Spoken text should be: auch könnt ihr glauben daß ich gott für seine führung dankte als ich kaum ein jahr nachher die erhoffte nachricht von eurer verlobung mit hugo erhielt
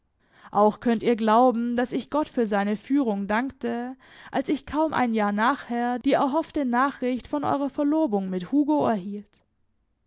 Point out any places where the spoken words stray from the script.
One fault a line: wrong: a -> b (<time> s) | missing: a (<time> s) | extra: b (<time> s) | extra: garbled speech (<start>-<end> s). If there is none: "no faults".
no faults